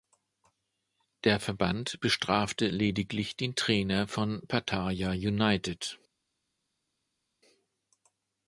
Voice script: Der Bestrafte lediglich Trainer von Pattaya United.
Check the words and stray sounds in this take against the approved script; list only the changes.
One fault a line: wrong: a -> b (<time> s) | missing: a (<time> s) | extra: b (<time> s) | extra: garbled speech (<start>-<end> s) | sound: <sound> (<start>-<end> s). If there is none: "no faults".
extra: Verband (1.4 s)
extra: den (3.4 s)